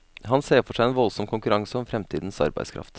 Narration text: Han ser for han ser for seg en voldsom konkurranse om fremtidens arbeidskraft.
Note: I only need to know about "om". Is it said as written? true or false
true